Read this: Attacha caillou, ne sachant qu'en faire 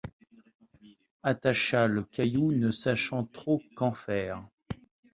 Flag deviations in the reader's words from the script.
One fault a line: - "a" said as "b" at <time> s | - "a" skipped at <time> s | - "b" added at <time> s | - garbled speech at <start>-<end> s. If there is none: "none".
- "le" added at 1.9 s
- "trop" added at 3.2 s